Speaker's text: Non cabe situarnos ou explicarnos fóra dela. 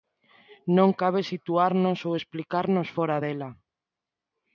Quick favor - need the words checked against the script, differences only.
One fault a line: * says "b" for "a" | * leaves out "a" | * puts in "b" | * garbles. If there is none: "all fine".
all fine